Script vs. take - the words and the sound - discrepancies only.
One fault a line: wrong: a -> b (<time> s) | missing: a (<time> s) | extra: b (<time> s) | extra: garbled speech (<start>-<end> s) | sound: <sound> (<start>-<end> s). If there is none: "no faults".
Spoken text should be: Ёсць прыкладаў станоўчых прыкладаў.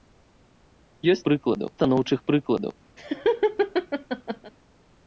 sound: laugh (3.0-4.5 s)